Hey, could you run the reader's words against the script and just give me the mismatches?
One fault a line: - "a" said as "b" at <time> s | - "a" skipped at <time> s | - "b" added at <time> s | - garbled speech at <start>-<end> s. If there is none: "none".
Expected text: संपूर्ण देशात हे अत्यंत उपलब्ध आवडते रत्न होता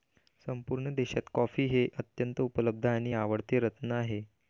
- "कॉफी" added at 1.3 s
- "आणि" added at 2.9 s
- "होता" said as "आहे" at 3.9 s